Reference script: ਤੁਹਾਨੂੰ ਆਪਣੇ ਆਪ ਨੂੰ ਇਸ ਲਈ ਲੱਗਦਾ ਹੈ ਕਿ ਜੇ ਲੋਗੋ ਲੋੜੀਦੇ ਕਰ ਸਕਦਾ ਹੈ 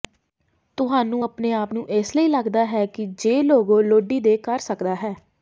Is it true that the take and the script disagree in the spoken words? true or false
false